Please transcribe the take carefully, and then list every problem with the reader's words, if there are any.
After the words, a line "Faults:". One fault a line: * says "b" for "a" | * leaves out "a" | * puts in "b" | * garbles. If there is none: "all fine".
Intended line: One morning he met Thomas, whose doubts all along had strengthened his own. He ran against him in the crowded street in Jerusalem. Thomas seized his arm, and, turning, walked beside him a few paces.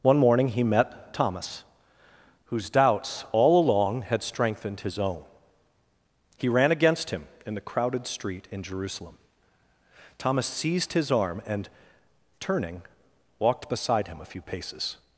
One morning he met Thomas, whose doubts all along had strengthened his own. He ran against him in the crowded street in Jerusalem. Thomas seized his arm, and, turning, walked beside him a few paces.
Faults:
all fine